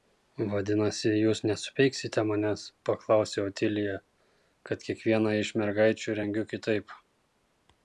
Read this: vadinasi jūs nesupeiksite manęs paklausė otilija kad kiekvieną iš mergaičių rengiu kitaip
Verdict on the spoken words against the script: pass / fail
pass